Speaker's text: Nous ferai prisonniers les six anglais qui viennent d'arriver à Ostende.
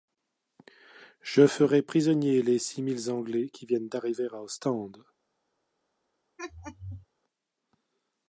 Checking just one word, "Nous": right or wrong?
wrong